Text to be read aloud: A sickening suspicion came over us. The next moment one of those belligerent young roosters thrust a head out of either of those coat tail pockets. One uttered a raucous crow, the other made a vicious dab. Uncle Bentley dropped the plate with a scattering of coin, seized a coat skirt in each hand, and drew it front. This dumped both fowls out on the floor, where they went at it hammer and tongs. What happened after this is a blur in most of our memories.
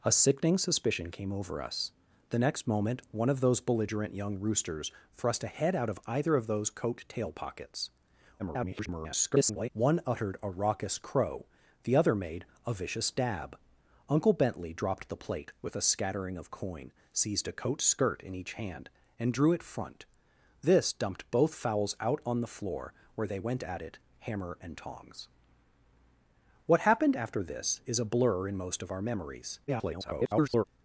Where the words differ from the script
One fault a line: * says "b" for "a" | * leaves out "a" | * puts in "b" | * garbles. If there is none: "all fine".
* garbles
* garbles